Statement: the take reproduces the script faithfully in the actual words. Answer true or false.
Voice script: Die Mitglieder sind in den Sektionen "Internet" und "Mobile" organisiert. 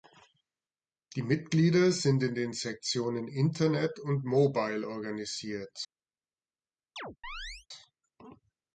true